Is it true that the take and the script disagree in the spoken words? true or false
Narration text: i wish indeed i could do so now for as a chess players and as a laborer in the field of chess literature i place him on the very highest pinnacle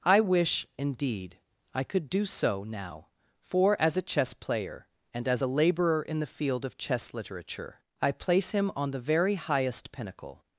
true